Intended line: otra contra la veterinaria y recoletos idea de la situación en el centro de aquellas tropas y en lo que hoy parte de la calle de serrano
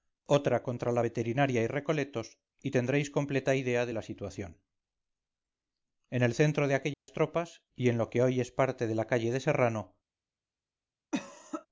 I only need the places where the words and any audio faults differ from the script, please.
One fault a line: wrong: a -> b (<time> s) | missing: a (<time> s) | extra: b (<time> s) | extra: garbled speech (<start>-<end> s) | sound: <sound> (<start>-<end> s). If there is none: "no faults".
extra: y tendréis completa (2.6 s)
sound: dropout (6.9-7.1 s)
extra: es (8.4 s)
sound: cough (11.1-11.7 s)